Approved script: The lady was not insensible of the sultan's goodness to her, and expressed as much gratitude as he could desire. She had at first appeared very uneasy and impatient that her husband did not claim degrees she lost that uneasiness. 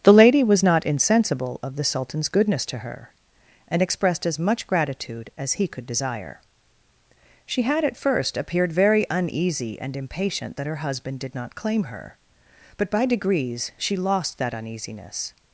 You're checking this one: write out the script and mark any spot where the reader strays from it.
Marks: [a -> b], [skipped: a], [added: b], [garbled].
The lady was not insensible of the sultan's goodness to her, and expressed as much gratitude as he could desire. She had at first appeared very uneasy and impatient that her husband did not claim [added: her but by] degrees she lost that uneasiness.